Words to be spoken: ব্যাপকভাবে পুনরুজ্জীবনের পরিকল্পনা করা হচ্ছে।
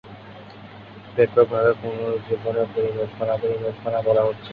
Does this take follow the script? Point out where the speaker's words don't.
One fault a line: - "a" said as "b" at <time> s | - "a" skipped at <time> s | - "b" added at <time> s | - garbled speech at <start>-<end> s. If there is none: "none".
- "পরিকল্পনা" added at 3.4 s